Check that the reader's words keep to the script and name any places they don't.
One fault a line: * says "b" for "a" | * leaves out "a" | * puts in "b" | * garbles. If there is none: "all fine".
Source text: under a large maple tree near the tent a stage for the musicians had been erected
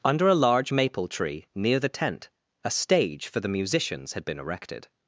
all fine